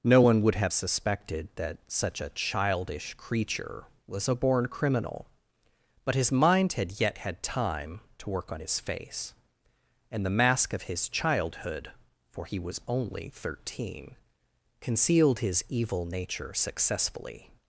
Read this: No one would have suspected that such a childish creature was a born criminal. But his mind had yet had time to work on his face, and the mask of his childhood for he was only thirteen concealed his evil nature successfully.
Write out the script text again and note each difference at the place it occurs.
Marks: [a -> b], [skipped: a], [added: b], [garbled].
No one would have suspected that such a childish creature was a born criminal. But his mind had yet had time to work on his face, and the mask of his childhood for he was only thirteen concealed his evil nature successfully.